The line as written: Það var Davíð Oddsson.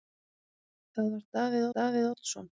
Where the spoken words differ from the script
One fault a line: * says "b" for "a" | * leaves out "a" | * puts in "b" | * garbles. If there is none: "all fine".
* puts in "Davíð"